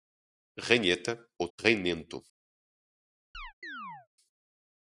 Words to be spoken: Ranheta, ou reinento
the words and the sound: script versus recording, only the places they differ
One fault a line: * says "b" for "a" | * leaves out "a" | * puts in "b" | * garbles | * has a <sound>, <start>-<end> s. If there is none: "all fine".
* has a chirp, 3.3-4.1 s